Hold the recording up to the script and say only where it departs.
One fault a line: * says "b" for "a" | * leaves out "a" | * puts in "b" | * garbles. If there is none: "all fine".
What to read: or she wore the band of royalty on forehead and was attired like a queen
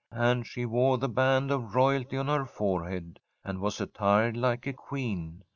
* says "and" for "or"
* puts in "her"